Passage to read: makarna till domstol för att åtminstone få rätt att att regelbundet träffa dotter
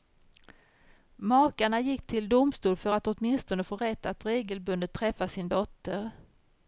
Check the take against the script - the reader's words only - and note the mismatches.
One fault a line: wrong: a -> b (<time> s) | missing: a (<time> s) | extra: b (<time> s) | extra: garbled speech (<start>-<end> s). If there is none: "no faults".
extra: gick (1.8 s)
missing: att (4.2 s)
extra: sin (5.3 s)